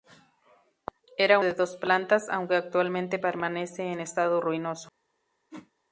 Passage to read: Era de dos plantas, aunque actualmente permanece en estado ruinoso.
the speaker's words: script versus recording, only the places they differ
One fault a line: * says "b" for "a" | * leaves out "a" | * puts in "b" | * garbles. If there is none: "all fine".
all fine